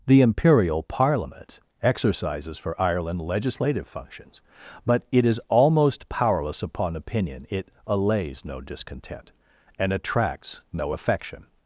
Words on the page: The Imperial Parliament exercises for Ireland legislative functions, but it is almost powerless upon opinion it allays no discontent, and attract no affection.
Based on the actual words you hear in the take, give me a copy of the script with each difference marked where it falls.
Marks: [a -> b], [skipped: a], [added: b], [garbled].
The Imperial Parliament exercises for Ireland legislative functions, but it is almost powerless upon opinion it allays no discontent, and [attract -> attracts] no affection.